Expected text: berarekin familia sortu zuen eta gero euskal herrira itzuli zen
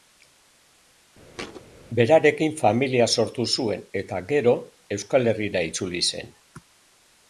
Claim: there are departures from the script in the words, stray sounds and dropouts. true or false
true